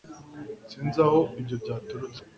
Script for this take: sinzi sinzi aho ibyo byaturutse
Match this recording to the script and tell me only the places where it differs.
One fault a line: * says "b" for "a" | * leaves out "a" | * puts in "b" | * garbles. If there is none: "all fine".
* leaves out "sinzi"